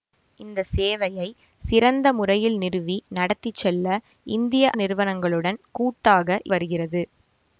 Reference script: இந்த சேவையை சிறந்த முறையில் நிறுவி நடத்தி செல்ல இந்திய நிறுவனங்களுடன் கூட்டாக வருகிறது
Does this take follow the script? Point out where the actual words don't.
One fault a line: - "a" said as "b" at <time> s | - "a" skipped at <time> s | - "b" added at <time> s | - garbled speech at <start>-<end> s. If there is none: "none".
none